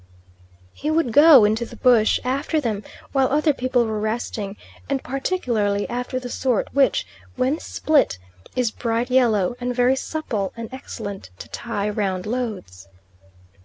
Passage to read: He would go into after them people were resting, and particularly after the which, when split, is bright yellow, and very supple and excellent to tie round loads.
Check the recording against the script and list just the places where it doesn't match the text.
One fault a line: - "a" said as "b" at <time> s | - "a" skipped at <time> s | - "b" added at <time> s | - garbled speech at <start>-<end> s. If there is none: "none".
- "the bush" added at 1.6 s
- "while other" added at 3.1 s
- "sort" added at 6.3 s